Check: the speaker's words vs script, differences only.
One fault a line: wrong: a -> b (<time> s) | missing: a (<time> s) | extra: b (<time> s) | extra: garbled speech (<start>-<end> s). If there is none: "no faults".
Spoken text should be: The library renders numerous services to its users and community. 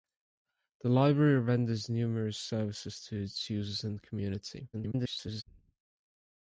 extra: garbled speech (4.7-5.4 s)